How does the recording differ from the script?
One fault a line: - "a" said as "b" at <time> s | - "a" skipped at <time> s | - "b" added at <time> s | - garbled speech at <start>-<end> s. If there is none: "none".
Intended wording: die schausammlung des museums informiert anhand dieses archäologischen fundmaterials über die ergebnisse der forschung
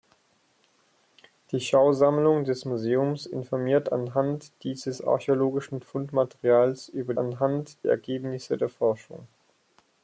- "die" said as "anhand" at 7.2 s